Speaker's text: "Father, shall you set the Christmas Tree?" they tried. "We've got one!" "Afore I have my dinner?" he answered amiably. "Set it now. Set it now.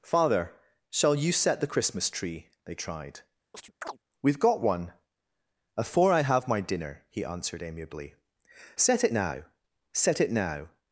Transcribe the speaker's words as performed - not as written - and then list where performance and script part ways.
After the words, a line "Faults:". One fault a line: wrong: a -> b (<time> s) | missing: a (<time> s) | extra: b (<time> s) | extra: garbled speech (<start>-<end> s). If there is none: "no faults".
"Father, shall you set the Christmas Tree?" they tried. "We've got one!" "Afore I have my dinner?" he answered amiably. "Set it now. Set it now.
Faults:
no faults